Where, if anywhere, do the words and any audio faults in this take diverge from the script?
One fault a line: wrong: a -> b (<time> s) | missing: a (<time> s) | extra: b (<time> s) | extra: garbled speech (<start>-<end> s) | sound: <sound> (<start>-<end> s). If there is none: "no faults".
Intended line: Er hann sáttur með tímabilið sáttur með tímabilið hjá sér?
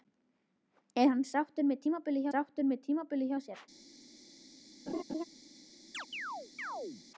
sound: laugh (4.9-5.2 s)
sound: chirp (5.9-7.0 s)